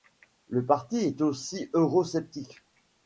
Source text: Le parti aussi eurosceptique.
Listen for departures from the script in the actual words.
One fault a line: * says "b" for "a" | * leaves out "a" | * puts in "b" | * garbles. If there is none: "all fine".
* puts in "est"